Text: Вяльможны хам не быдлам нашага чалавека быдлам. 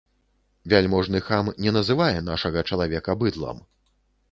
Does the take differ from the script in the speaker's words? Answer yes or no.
yes